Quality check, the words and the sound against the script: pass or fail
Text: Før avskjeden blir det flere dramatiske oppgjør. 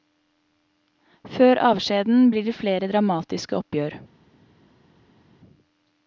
pass